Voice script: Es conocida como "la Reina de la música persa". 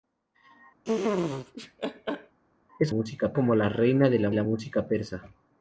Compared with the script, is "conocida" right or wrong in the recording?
wrong